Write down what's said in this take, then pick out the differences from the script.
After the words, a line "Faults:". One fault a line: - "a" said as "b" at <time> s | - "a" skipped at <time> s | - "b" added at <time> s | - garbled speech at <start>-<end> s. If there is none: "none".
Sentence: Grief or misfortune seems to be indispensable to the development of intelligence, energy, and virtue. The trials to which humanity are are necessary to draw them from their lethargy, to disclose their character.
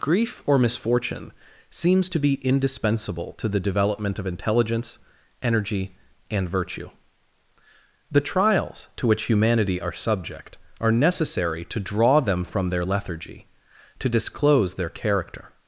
Grief or misfortune seems to be indispensable to the development of intelligence, energy, and virtue. The trials to which humanity are subject are necessary to draw them from their lethargy, to disclose their character.
Faults:
- "subject" added at 9.9 s